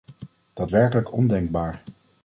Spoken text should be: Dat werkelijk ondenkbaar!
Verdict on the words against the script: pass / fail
pass